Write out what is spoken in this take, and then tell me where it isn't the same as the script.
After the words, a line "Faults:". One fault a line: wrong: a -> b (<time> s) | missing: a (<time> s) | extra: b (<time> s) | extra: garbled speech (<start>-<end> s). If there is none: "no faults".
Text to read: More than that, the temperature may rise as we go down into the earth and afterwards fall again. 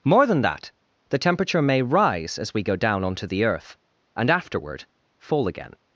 More than that, the temperature may rise as we go down onto the earth and afterward fall again.
Faults:
wrong: into -> onto (3.0 s)
wrong: afterwards -> afterward (4.3 s)